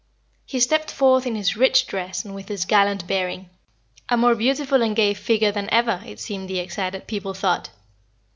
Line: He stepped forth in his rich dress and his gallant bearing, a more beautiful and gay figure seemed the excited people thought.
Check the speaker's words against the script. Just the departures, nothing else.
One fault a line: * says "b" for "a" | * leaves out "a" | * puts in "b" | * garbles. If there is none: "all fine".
* puts in "with"
* puts in "than ever it"